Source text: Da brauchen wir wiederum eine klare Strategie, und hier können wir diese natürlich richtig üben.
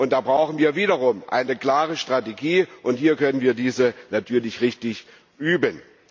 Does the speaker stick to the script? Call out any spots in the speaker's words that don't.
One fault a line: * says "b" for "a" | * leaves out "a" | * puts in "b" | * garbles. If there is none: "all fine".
all fine